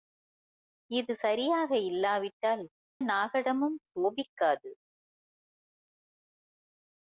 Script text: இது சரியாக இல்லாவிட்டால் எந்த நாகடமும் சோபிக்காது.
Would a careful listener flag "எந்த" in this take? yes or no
yes